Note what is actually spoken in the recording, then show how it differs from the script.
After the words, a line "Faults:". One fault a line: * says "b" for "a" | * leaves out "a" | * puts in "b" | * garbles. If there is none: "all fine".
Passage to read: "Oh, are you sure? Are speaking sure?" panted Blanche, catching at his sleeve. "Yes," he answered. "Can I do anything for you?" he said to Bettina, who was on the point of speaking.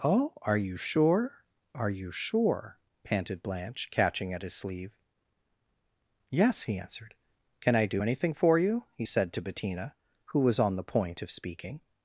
"Oh, are you sure? Are you sure?" panted Blanche, catching at his sleeve. "Yes," he answered. "Can I do anything for you?" he said to Bettina, who was on the point of speaking.
Faults:
* says "you" for "speaking"